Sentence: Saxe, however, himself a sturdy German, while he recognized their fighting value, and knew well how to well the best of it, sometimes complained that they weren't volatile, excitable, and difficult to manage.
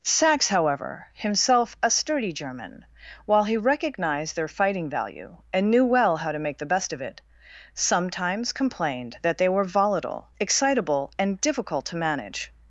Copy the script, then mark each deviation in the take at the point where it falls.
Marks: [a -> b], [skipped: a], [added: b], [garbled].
Saxe, however, himself a sturdy German, while he recognized their fighting value, and knew well how to [well -> make] the best of it, sometimes complained that they [weren't -> were] volatile, excitable, and difficult to manage.